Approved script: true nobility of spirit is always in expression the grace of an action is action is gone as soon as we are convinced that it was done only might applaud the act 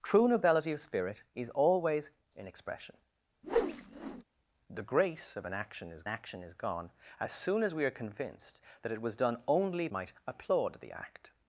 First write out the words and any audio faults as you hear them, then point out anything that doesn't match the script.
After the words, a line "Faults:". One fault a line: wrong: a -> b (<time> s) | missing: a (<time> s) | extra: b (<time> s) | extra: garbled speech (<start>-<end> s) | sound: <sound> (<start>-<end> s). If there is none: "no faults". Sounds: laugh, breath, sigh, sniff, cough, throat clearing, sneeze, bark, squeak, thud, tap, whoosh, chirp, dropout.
true nobility of spirit is always in expression the grace of an action is action is gone as soon as we are convinced that it was done only might applaud the act
Faults:
sound: whoosh (3.4-4.2 s)